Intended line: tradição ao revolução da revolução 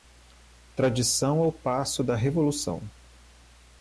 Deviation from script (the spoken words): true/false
true